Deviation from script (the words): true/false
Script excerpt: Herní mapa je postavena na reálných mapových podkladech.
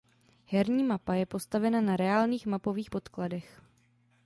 false